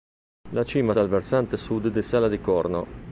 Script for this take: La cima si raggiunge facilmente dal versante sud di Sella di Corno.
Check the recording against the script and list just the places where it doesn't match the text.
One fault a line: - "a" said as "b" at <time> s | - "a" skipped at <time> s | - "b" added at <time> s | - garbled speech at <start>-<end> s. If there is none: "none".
- "si raggiunge facilmente" skipped at 0.9 s